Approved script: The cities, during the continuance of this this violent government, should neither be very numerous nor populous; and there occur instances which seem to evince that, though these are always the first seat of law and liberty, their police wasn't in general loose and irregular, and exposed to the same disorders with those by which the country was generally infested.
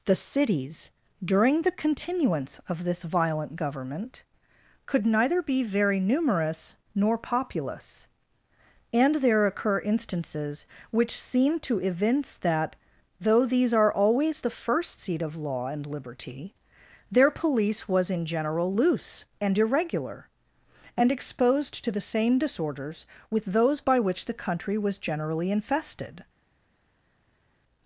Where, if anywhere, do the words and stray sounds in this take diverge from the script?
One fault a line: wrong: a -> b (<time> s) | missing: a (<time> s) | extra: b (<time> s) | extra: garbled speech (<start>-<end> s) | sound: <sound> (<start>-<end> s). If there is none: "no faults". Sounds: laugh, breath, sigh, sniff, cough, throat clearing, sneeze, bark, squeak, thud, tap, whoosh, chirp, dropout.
missing: this (3.0 s)
wrong: should -> could (4.9 s)
wrong: wasn't -> was (17.9 s)